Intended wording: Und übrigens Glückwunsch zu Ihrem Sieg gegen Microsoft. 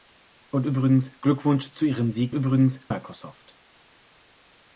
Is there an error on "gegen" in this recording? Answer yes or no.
yes